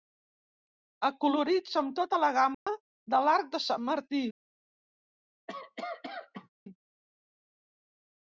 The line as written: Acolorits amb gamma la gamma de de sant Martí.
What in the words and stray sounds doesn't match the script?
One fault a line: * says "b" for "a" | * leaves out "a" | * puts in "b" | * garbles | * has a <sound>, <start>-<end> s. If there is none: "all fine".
* says "tota" for "gamma"
* has a dropout, 2.5-2.7 s
* puts in "l'arc"
* has a cough, 5.5-6.5 s